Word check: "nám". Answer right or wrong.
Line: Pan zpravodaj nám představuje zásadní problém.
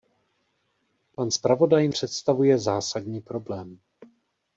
wrong